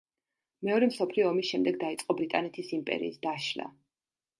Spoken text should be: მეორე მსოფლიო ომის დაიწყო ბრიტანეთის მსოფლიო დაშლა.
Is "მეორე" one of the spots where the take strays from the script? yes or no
no